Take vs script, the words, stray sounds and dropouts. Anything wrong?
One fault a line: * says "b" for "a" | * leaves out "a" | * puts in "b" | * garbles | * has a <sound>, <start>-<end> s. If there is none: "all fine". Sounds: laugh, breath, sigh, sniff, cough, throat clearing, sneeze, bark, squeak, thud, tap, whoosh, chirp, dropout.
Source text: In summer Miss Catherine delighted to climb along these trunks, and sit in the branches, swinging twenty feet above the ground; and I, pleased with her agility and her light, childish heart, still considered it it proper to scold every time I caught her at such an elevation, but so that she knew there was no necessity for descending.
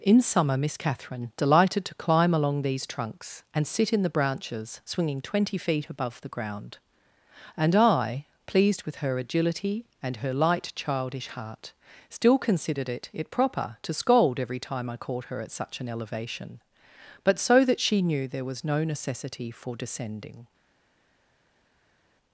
all fine